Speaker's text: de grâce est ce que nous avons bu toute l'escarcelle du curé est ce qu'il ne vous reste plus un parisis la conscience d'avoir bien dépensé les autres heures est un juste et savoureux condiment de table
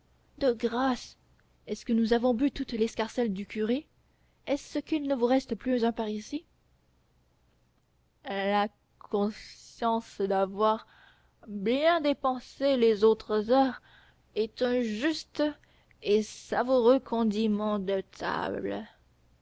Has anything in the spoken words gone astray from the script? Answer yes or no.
no